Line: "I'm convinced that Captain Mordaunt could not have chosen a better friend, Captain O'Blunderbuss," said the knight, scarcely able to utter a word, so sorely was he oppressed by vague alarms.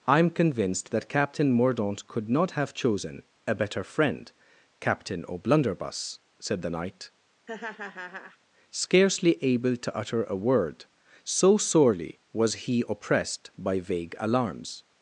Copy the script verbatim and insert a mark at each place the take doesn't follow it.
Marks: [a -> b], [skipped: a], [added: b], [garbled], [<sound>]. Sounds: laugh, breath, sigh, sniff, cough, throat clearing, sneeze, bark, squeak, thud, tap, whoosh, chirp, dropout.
"I'm convinced that Captain Mordaunt could not have chosen a better friend, Captain O'Blunderbuss," said the knight, [laugh] scarcely able to utter a word, so sorely was he oppressed by vague alarms.